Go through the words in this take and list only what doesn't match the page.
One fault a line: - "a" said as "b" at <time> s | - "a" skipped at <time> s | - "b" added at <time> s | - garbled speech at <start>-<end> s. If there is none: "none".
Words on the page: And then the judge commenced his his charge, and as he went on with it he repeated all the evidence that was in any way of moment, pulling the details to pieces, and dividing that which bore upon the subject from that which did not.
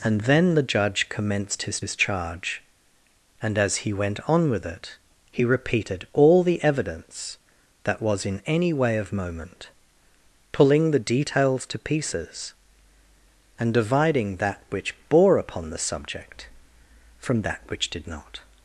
none